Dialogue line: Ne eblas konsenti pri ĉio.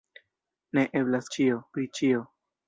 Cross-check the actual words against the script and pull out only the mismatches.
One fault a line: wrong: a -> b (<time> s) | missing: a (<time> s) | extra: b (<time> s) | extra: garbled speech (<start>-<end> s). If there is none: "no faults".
wrong: konsenti -> ĉio (1.4 s)